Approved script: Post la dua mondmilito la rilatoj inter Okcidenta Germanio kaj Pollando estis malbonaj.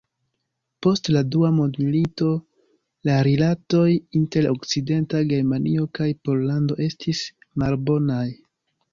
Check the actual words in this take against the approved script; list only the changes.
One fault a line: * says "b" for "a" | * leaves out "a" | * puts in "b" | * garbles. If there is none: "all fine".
all fine